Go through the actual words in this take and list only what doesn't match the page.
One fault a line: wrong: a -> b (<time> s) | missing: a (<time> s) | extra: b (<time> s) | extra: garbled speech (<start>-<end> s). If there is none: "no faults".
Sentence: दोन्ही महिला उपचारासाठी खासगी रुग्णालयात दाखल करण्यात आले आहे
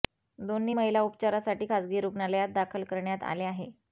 no faults